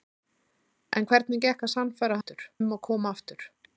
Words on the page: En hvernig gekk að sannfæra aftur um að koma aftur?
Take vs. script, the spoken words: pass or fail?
pass